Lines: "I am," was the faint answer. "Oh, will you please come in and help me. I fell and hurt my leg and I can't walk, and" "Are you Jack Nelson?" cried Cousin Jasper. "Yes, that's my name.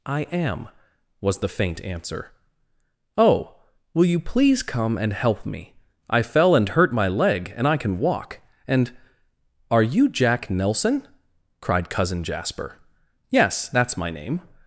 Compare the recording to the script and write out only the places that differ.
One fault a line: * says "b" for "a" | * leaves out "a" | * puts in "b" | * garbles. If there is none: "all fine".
* leaves out "in"
* says "can" for "can't"